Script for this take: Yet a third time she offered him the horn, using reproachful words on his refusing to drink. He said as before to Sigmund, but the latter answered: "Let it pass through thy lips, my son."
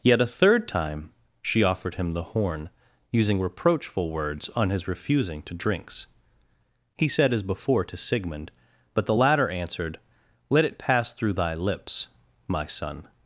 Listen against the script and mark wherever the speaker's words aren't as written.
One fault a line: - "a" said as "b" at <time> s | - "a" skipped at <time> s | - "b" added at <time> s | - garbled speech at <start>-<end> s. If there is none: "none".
- "drink" said as "drinks" at 5.5 s